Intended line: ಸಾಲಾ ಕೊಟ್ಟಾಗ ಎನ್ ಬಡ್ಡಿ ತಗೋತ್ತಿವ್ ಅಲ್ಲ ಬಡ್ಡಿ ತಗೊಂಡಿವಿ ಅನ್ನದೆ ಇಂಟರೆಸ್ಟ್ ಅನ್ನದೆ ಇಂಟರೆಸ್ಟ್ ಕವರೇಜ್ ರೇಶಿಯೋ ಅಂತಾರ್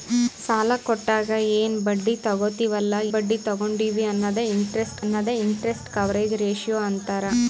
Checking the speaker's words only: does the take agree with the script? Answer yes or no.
yes